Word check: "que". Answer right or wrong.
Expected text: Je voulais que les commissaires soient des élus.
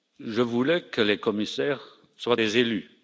right